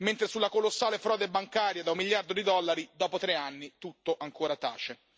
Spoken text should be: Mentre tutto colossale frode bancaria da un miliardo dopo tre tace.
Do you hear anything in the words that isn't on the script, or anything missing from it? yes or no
yes